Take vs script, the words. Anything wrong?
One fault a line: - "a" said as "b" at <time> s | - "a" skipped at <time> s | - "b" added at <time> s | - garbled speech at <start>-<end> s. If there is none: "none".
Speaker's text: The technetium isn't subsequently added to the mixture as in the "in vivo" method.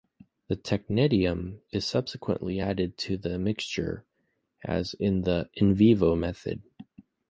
- "isn't" said as "is" at 1.7 s